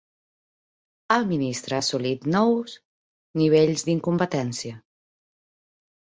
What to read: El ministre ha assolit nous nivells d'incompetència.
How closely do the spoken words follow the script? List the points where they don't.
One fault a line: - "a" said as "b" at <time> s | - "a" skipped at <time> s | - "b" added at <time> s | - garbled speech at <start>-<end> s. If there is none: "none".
none